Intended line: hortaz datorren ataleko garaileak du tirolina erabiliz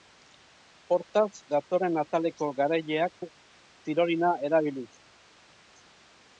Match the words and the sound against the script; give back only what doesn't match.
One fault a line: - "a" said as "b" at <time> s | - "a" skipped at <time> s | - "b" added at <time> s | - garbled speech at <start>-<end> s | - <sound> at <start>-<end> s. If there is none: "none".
none